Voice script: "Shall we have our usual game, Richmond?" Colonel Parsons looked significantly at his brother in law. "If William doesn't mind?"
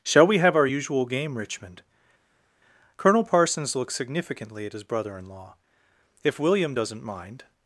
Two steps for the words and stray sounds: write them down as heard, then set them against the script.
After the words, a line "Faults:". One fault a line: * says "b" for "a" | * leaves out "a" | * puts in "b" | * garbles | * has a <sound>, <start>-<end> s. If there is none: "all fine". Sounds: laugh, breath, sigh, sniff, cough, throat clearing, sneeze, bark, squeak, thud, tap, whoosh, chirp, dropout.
"Shall we have our usual game, Richmond?" Colonel Parsons looks significantly at his brother in law. "If William doesn't mind?"
Faults:
* says "looks" for "looked"